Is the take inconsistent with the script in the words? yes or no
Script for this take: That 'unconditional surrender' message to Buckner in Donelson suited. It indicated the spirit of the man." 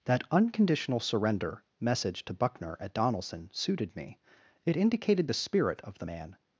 yes